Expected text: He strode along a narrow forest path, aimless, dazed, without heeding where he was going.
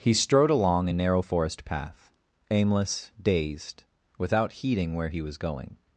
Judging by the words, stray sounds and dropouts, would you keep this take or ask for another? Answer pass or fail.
pass